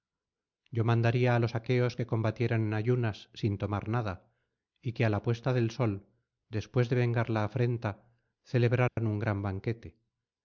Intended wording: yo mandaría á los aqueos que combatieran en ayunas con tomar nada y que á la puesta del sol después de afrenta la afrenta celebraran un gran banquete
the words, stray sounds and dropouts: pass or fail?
fail